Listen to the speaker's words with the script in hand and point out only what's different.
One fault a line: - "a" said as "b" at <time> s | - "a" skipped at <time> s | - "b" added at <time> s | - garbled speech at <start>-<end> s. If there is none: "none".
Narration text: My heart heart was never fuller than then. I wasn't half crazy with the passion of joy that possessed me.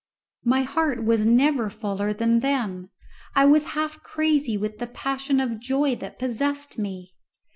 - "heart" skipped at 1.0 s
- "wasn't" said as "was" at 3.4 s